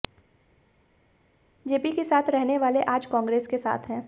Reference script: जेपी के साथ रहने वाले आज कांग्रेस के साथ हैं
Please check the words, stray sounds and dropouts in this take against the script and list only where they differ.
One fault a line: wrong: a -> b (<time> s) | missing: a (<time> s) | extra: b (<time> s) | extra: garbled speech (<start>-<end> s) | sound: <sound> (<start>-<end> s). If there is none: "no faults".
no faults